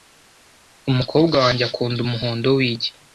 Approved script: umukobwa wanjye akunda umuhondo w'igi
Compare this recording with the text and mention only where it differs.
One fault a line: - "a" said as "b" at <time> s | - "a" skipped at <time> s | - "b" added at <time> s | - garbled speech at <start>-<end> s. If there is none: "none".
none